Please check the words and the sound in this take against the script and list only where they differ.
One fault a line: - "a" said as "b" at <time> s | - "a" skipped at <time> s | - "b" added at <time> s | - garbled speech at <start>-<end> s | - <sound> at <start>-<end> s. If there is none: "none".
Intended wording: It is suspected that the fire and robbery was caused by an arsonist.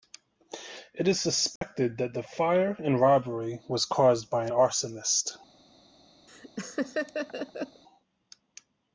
- dropout at 1.6-1.6 s
- laugh at 6.3-7.8 s